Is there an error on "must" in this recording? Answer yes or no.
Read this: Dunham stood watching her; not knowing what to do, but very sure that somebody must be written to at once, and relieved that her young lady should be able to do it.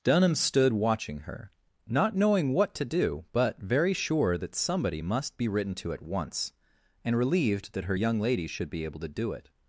no